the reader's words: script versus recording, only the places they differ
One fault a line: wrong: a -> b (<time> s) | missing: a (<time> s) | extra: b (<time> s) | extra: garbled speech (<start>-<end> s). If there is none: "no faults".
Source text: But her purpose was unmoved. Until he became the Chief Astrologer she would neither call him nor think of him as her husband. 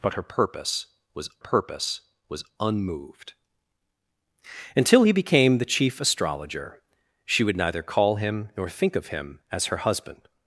extra: purpose was (1.4 s)